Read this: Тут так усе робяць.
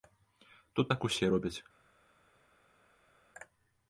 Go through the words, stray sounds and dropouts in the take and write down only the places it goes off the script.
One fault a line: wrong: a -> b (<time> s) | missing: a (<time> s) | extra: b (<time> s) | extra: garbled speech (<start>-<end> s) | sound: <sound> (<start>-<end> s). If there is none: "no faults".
no faults